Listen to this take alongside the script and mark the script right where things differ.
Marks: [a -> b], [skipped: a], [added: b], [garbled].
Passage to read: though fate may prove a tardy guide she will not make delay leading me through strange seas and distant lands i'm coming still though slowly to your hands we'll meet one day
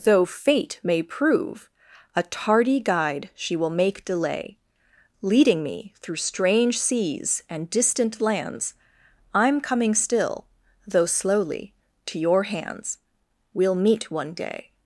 though fate may prove a tardy guide she will [skipped: not] make delay leading me through strange seas and distant lands i'm coming still though slowly to your hands we'll meet one day